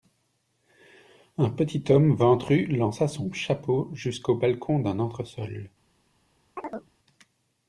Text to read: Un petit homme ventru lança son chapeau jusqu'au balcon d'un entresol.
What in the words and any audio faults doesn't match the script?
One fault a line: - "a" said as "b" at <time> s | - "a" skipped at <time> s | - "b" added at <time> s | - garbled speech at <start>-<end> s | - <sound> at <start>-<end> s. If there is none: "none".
- chirp at 6.6-6.9 s